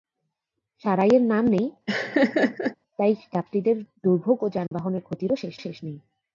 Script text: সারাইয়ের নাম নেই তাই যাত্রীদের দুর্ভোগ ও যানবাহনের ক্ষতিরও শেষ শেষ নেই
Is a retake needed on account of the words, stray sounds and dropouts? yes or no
yes